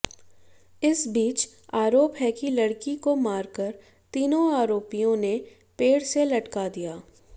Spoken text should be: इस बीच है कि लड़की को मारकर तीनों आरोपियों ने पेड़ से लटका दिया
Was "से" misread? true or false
false